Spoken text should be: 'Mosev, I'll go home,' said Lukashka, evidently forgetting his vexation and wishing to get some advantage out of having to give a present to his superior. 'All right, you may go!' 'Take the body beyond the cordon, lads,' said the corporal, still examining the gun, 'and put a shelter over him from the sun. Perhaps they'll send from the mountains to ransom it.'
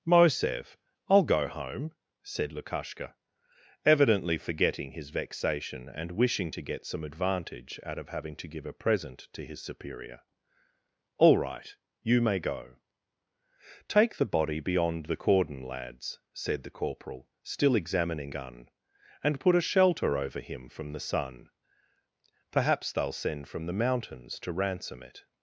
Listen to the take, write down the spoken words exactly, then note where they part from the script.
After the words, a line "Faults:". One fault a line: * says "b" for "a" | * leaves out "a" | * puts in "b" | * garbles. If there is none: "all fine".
'Mosev, I'll go home,' said Lukashka, evidently forgetting his vexation and wishing to get some advantage out of having to give a present to his superior. 'All right, you may go!' 'Take the body beyond the cordon, lads,' said the corporal, still examining gun, 'and put a shelter over him from the sun. Perhaps they'll send from the mountains to ransom it.'
Faults:
* leaves out "the"